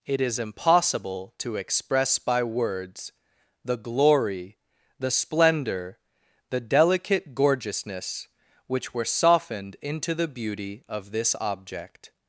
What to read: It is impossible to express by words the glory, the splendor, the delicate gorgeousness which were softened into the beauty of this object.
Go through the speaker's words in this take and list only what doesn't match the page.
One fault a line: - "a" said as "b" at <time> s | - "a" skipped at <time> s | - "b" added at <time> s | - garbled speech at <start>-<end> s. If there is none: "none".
none